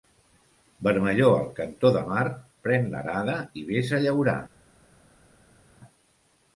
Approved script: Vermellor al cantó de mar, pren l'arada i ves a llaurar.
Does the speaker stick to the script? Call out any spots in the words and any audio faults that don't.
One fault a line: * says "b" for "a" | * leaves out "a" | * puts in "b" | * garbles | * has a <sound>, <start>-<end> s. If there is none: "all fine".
all fine